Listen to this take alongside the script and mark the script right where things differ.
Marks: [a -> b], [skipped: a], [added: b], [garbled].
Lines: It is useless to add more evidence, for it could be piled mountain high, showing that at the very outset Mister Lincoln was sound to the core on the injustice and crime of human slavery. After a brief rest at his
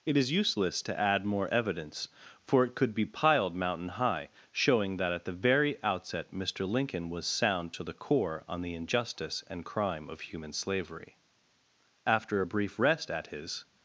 It is useless to add more evidence, for it could be piled mountain high, showing that at the very outset Mister Lincoln was sound to the core on the injustice and crime of human slavery. After a brief rest at his